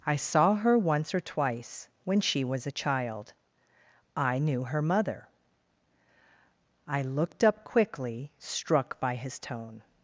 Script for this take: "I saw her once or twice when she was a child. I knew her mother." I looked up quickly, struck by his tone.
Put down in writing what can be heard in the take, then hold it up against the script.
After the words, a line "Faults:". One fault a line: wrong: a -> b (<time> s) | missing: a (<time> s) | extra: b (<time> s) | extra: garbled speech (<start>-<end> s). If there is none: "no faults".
"I saw her once or twice when she was a child. I knew her mother." I looked up quickly, struck by his tone.
Faults:
no faults